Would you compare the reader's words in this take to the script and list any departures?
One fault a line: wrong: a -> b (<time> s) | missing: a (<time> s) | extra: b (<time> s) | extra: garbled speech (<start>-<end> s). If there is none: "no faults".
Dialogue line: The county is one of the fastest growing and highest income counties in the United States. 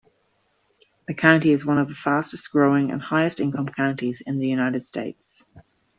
no faults